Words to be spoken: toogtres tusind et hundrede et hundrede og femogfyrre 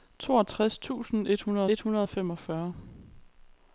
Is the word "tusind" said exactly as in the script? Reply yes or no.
yes